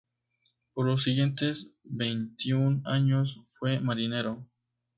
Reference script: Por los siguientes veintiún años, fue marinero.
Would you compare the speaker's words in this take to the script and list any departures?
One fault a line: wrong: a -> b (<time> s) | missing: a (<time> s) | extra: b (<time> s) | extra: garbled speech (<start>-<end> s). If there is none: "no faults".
no faults